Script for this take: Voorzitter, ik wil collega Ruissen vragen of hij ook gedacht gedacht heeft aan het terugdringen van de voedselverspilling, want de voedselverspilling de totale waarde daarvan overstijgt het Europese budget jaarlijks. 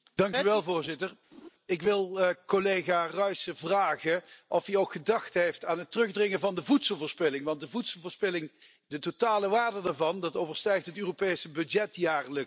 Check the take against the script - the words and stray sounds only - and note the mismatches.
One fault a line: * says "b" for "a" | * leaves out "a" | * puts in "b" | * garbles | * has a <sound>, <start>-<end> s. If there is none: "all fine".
* has a laugh, 1.3-1.5 s
* leaves out "gedacht"